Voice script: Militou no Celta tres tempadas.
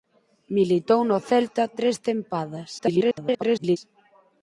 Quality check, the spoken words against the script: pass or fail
fail